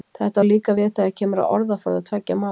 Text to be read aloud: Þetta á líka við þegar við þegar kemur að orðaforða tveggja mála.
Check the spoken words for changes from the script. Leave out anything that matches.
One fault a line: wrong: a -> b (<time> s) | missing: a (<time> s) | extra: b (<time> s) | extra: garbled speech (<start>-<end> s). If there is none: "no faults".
missing: við þegar (1.1 s)